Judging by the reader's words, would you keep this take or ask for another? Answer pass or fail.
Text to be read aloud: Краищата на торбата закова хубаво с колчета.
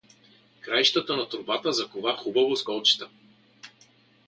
pass